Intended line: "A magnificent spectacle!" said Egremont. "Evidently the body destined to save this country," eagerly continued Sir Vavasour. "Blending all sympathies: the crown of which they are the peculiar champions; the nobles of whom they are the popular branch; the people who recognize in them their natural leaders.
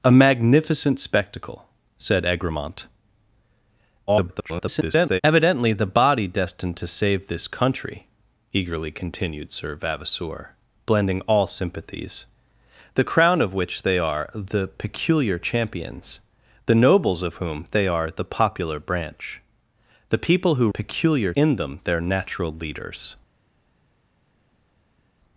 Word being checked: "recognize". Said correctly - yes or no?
no